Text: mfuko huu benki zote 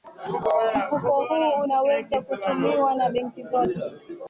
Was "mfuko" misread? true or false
false